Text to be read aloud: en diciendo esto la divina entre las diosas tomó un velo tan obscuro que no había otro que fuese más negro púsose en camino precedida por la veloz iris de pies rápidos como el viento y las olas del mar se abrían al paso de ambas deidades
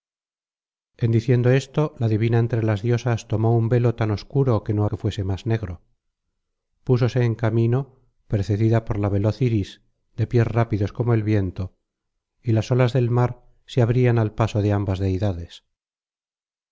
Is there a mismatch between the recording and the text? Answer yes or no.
yes